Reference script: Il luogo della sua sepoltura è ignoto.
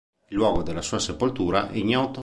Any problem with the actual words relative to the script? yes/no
no